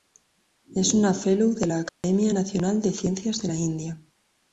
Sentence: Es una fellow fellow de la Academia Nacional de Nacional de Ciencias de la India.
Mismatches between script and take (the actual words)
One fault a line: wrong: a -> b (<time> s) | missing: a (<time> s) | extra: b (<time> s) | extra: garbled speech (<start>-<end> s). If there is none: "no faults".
missing: fellow (1.5 s)
missing: Nacional de (2.9 s)